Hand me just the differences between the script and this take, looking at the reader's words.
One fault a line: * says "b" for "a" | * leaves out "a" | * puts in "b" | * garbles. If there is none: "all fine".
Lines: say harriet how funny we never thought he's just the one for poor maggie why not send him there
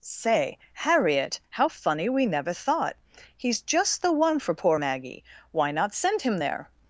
all fine